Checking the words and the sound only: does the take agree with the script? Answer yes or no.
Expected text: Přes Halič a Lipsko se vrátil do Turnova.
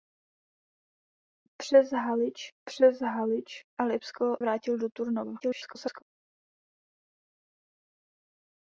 no